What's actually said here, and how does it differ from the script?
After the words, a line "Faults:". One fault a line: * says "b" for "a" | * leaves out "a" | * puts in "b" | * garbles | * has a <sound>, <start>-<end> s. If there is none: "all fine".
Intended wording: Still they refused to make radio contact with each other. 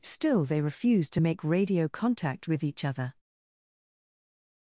Still they refused to make radio contact with each other.
Faults:
all fine